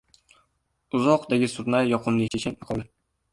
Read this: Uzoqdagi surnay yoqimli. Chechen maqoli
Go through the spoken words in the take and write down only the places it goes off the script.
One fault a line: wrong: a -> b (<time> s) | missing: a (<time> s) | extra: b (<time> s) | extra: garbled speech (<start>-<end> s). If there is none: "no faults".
no faults